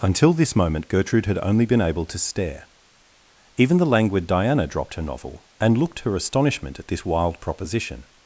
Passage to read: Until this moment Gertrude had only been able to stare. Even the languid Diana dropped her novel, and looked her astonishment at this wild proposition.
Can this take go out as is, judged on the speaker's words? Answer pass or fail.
pass